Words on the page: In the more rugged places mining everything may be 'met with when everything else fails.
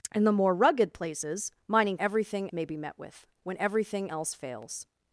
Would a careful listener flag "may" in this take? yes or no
no